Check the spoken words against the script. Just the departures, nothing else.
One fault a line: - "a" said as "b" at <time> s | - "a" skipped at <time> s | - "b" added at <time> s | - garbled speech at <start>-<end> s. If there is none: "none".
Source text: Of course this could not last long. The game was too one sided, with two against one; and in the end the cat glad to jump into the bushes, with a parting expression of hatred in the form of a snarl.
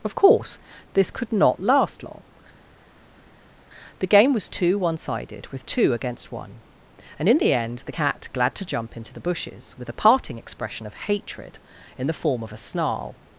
none